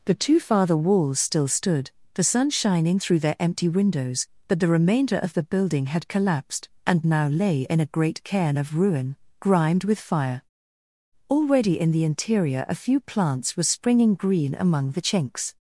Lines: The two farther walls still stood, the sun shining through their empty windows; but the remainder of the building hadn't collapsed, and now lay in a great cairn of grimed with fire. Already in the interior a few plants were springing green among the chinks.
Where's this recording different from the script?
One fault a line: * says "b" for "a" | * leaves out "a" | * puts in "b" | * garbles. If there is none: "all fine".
* says "had" for "hadn't"
* puts in "ruin"